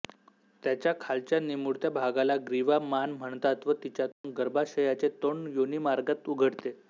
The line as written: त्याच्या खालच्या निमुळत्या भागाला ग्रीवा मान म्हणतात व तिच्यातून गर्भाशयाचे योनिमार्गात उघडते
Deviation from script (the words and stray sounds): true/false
true